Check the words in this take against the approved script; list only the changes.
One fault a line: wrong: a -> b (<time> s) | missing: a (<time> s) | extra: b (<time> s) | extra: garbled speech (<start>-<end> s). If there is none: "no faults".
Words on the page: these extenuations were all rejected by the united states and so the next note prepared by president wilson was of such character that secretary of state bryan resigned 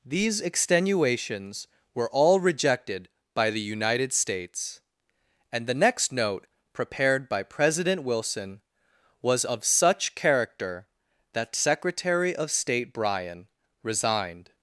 missing: so (5.7 s)